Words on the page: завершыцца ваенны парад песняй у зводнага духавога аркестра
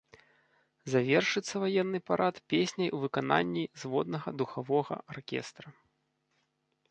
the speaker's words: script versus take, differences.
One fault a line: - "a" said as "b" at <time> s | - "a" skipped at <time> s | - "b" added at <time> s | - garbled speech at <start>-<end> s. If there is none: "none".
- "выкананні" added at 3.0 s